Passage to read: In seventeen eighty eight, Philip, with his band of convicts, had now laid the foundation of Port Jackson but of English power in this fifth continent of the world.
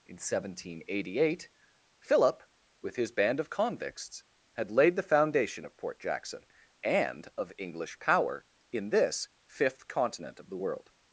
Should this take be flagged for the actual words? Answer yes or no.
yes